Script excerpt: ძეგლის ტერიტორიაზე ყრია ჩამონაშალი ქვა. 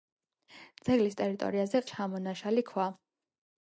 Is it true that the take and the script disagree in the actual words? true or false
true